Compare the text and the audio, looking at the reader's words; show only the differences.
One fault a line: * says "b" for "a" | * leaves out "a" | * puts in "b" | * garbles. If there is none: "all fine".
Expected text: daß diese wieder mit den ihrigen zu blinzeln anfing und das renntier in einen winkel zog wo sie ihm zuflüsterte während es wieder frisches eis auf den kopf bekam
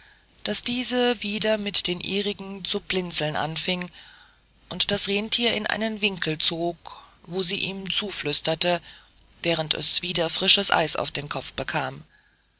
all fine